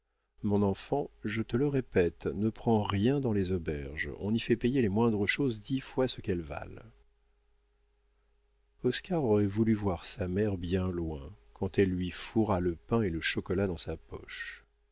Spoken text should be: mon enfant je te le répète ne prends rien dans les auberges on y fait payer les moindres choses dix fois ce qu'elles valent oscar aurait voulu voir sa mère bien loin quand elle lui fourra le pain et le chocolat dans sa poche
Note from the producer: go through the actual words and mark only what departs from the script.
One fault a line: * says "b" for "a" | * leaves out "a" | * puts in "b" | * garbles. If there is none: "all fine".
all fine